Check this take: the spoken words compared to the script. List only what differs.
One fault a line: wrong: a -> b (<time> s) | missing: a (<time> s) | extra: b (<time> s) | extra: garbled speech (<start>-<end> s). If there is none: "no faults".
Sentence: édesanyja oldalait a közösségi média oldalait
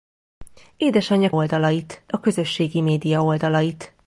no faults